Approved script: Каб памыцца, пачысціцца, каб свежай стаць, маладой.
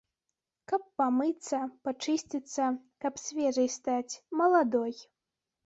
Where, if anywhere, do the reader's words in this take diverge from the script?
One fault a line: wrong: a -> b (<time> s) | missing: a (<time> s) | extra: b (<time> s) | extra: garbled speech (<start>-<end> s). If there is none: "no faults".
no faults